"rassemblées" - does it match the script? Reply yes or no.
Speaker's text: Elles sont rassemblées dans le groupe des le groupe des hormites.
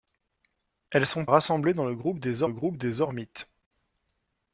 yes